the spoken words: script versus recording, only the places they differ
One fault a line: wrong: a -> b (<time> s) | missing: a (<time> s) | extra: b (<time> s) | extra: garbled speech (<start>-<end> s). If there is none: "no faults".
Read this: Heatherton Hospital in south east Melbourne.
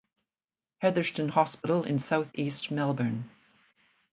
no faults